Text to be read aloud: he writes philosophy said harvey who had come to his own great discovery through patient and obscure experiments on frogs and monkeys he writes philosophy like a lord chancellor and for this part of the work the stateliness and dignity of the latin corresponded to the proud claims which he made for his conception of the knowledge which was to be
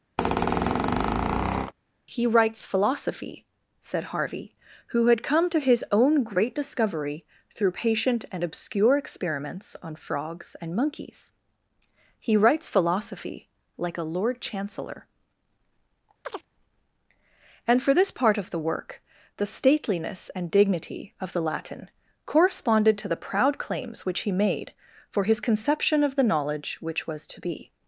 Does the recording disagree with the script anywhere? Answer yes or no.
no